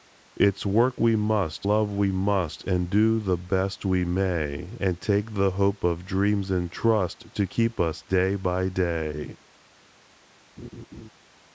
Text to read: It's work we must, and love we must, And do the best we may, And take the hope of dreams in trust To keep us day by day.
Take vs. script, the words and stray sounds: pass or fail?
fail